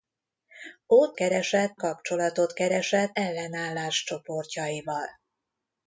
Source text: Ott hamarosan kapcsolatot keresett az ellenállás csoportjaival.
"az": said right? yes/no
no